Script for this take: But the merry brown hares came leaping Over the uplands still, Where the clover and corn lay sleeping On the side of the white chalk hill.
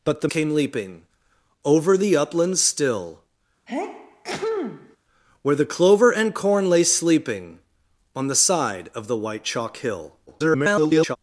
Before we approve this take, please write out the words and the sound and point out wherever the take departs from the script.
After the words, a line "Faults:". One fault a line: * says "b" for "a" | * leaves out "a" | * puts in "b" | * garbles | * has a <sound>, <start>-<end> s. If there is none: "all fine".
But the came leaping Over the uplands still, Where the clover and corn lay sleeping On the side of the white chalk hill. [garbled]
Faults:
* leaves out "merry brown hares"
* has a sneeze, 3.7-5.0 s
* garbles